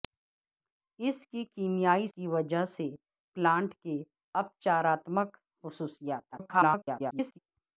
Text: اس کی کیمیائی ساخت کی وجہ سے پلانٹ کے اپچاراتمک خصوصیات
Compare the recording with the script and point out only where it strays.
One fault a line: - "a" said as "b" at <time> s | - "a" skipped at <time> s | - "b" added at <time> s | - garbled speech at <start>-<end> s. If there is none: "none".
- "ساخت" skipped at 2.1 s
- garbled speech at 6.3-7.4 s